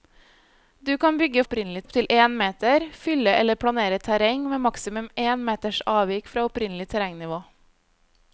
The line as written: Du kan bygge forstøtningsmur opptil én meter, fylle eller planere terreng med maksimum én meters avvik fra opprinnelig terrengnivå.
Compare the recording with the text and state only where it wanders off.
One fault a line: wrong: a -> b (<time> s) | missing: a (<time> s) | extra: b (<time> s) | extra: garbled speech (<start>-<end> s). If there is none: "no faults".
wrong: forstøtningsmur -> opprinnelig (1.4 s)